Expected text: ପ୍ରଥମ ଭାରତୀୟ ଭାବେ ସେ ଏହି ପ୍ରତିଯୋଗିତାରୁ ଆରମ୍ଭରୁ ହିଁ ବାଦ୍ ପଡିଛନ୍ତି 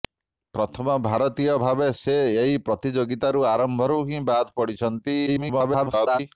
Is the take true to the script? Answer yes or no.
no